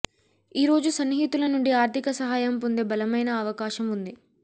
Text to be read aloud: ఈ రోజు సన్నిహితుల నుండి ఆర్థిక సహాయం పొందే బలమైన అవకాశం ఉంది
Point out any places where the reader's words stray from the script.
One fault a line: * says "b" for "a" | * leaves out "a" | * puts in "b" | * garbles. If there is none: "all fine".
all fine